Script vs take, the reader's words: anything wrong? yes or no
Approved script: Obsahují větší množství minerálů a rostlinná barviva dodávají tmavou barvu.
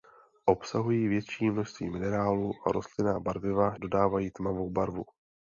no